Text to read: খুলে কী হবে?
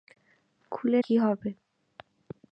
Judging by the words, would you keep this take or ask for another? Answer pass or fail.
pass